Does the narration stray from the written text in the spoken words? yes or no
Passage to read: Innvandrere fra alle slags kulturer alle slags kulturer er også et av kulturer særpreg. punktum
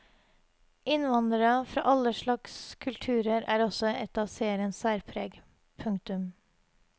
yes